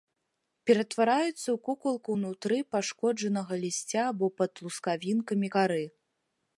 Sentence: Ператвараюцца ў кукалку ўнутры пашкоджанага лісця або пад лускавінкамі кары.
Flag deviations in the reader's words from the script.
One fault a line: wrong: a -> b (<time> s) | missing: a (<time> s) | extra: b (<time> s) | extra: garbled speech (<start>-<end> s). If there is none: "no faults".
no faults